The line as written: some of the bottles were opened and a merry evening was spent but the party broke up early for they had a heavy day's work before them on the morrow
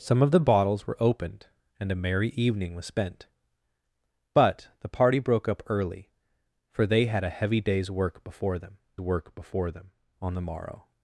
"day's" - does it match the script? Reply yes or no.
yes